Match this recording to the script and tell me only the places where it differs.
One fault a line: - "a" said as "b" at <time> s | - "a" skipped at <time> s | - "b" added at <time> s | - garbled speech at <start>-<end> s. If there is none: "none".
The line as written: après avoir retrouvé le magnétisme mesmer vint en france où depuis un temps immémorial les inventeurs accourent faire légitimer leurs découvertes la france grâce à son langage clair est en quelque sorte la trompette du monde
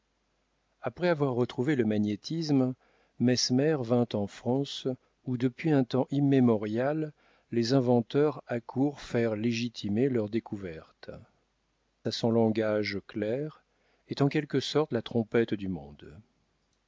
- "la france grâce" skipped at 11.1 s